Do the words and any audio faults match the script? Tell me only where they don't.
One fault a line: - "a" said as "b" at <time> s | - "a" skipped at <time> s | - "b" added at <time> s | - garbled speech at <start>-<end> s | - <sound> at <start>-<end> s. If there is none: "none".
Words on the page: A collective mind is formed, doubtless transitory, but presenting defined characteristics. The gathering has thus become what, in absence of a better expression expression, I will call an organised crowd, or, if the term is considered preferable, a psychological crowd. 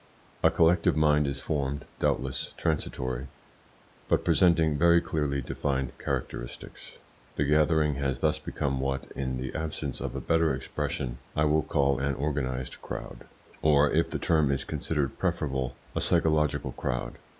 - "very clearly" added at 4.8 s
- "the" added at 9.4 s
- "expression" skipped at 11.2 s